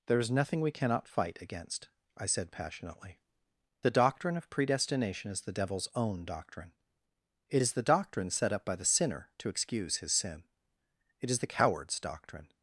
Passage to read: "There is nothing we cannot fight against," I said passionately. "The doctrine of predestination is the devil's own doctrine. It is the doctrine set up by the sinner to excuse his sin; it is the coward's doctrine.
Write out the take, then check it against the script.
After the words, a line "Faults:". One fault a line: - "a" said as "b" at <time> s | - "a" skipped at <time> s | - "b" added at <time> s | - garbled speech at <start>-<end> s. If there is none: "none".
"There is nothing we cannot fight against," I said passionately. "The doctrine of predestination is the devil's own doctrine. It is the doctrine set up by the sinner to excuse his sin; it is the coward's doctrine.
Faults:
none